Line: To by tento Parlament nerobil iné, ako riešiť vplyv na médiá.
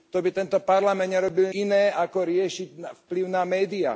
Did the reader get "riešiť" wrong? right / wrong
right